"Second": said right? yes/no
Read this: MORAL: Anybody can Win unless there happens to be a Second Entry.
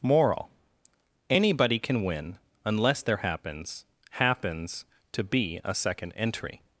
yes